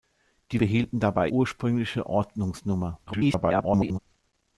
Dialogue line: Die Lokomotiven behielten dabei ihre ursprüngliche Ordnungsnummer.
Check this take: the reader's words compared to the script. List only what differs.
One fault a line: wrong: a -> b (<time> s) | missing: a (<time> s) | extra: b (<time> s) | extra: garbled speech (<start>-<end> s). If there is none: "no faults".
missing: Lokomotiven (0.6 s)
missing: ihre (1.3 s)
extra: garbled speech (3.1-4.0 s)